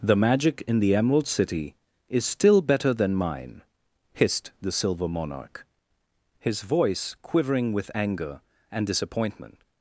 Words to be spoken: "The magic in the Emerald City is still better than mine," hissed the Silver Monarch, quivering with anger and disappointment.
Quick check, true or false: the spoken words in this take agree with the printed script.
false